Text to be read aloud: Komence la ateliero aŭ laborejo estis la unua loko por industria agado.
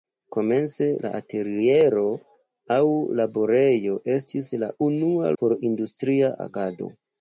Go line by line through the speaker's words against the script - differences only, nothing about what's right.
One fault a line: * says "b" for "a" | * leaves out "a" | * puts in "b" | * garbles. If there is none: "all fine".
* leaves out "loko"